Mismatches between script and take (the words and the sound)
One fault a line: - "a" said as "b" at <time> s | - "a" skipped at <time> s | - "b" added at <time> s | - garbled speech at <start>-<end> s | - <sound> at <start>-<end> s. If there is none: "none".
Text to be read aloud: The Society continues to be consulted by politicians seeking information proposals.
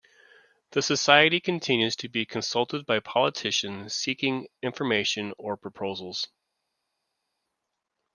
- "or" added at 5.4 s